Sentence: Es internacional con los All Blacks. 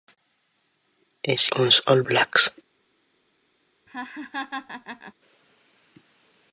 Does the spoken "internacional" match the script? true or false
false